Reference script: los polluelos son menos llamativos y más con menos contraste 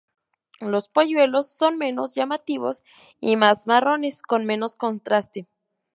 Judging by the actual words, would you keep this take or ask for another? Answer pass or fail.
fail